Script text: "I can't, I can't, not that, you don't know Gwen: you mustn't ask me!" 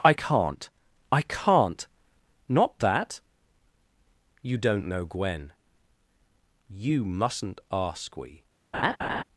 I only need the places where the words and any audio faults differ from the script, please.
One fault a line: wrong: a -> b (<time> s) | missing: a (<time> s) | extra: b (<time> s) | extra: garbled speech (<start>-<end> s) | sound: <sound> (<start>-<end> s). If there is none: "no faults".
wrong: me -> we (8.1 s)
sound: laugh (8.7-9.2 s)